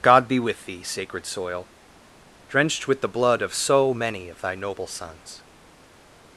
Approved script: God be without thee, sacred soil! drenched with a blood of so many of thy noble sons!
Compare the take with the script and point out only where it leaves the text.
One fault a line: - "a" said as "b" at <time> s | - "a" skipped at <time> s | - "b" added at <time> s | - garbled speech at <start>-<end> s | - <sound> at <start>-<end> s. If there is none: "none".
- "without" said as "with" at 0.4 s
- "a" said as "the" at 3.0 s